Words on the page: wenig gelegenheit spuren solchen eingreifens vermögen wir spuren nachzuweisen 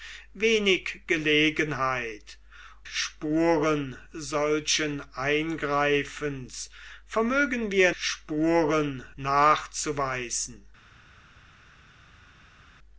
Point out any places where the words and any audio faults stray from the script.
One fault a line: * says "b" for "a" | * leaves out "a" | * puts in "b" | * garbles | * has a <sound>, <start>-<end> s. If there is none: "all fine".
all fine